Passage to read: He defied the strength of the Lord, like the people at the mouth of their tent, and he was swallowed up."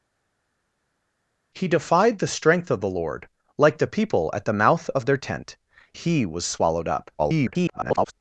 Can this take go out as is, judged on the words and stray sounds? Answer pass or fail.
fail